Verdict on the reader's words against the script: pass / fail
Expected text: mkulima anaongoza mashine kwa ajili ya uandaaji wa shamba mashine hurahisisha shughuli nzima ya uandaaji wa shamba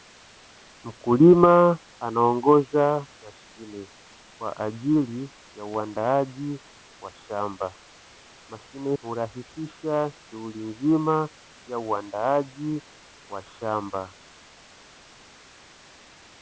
pass